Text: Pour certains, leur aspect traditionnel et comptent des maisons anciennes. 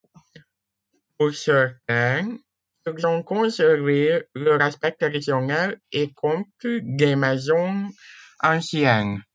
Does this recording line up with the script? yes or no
no